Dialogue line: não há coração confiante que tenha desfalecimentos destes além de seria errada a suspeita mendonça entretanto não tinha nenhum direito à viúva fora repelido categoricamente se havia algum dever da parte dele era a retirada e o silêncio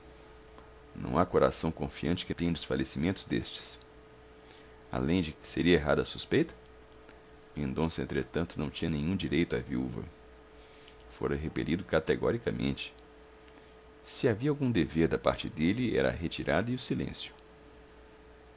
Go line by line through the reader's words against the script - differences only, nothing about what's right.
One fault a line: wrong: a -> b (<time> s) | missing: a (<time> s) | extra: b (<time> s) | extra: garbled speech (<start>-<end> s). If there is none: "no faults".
no faults